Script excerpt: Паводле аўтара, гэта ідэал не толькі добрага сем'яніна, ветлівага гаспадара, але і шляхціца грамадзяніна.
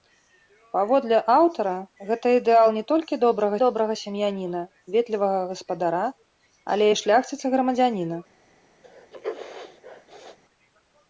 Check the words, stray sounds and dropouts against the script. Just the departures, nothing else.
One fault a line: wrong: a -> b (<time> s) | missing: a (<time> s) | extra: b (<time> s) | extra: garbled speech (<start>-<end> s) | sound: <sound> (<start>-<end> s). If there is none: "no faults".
extra: добрага (3.6 s)
sound: sneeze (8.8-10.4 s)